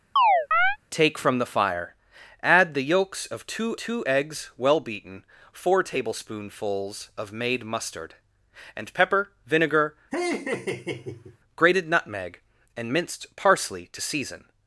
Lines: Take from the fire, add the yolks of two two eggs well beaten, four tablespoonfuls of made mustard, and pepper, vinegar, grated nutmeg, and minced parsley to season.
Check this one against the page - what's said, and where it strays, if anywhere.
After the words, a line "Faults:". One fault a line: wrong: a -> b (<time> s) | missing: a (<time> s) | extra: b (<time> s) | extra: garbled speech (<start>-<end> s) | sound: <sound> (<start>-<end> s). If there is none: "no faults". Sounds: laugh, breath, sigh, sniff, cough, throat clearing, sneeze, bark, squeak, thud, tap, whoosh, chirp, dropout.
Take from the fire, add the yolks of two two eggs well beaten, four tablespoonfuls of made mustard, and pepper, vinegar, grated nutmeg, and minced parsley to season.
Faults:
sound: chirp (0.2-0.8 s)
sound: laugh (10.1-11.4 s)